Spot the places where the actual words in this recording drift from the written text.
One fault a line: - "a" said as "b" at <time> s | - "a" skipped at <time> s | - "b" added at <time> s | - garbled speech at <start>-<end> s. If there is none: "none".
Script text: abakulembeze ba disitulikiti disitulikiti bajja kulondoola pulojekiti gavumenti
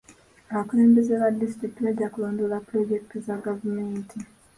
- "disitulikiti" skipped at 1.8 s
- "za" added at 3.2 s